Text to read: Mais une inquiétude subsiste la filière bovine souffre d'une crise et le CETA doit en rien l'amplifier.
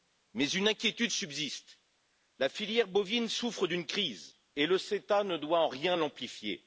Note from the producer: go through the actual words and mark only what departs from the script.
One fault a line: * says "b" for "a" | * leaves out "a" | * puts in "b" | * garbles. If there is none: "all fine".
* puts in "ne"